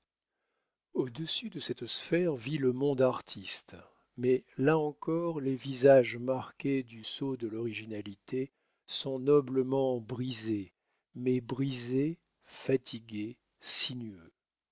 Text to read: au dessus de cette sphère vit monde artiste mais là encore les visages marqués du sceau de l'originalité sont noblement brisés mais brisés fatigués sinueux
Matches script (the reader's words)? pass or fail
fail